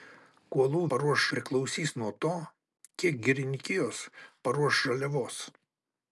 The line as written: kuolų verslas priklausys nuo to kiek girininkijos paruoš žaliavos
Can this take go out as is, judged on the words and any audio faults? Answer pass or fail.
fail